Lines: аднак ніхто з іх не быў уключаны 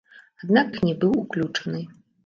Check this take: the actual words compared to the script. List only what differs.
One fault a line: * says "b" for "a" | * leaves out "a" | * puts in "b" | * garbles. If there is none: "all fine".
* leaves out "ніхто з"